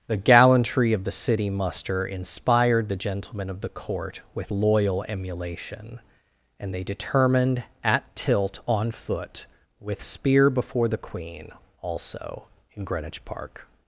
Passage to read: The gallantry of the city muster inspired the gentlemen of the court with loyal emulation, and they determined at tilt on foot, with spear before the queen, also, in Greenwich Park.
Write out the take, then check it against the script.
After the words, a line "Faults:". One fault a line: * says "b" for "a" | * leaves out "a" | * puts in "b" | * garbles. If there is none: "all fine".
The gallantry of the city muster inspired the gentlemen of the court with loyal emulation, and they determined at tilt on foot, with spear before the queen, also, in Greenwich Park.
Faults:
all fine